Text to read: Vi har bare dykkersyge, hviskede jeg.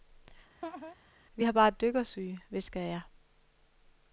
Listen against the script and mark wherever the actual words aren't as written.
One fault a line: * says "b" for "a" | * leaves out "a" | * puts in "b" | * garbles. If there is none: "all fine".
all fine